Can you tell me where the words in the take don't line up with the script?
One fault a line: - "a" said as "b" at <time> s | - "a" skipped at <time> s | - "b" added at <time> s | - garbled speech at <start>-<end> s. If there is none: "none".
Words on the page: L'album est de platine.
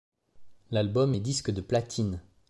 - "disque" added at 1.2 s